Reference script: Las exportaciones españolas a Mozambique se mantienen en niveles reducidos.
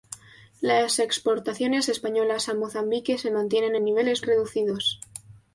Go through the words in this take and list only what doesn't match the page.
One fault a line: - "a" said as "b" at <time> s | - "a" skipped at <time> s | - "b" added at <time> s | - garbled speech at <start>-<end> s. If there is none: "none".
none